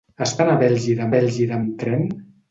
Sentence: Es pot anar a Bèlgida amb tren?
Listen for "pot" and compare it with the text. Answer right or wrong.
wrong